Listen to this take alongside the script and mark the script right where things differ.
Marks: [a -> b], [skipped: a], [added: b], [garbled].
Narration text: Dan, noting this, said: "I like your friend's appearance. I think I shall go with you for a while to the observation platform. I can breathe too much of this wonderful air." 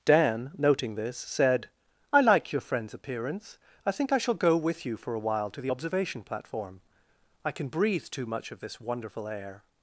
Dan, noting this, said: "I like your friend's appearance. I think I shall go with you for a while to the observation platform. I can breathe too much of this wonderful air."